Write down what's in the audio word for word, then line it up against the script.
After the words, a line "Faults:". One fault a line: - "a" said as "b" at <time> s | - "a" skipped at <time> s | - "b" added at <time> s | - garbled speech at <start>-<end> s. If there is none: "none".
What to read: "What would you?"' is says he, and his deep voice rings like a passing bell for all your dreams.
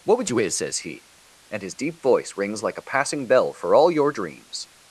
"What would you?"' is says he, and his deep voice rings like a passing bell for all your dreams.
Faults:
none